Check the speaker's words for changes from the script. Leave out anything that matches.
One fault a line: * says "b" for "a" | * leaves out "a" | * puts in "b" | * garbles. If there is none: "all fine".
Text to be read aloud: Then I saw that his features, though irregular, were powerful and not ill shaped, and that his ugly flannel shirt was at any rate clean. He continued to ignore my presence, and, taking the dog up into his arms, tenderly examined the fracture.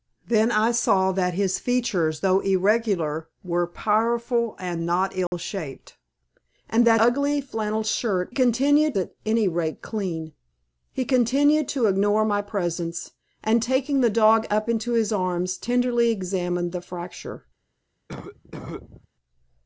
* leaves out "his"
* says "continued" for "was"